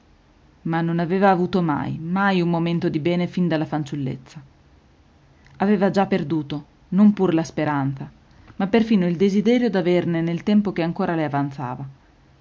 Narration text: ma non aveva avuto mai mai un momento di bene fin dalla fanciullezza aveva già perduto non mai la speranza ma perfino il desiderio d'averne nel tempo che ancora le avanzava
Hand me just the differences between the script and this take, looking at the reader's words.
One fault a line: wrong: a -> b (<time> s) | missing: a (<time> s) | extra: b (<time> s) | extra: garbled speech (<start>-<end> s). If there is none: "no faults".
wrong: mai -> pur (7.1 s)